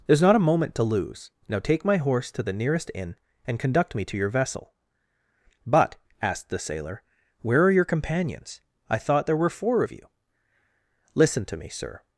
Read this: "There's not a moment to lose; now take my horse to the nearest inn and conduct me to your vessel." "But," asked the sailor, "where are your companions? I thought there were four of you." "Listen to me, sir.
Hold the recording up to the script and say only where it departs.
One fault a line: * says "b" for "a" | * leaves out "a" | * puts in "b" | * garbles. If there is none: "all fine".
all fine